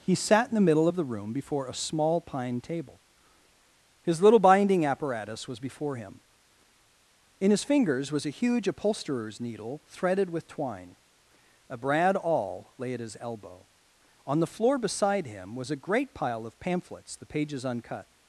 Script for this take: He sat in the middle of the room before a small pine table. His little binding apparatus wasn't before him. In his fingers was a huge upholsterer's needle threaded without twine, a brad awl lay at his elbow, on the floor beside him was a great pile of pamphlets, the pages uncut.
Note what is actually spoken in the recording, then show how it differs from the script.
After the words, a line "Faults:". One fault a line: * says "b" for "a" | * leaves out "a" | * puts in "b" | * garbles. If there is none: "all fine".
He sat in the middle of the room before a small pine table. His little binding apparatus was before him. In his fingers was a huge upholsterer's needle threaded with twine, a brad awl lay at his elbow, on the floor beside him was a great pile of pamphlets, the pages uncut.
Faults:
* says "was" for "wasn't"
* says "with" for "without"